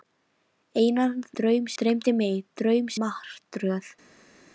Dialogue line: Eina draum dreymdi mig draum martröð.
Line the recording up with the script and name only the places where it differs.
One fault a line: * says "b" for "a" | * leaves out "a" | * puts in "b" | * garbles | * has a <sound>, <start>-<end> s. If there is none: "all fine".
all fine